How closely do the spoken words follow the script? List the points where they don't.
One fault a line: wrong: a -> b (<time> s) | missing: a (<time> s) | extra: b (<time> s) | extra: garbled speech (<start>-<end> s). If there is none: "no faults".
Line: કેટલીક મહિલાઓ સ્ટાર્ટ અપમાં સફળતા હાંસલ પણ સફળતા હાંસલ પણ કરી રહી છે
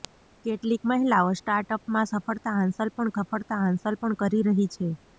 no faults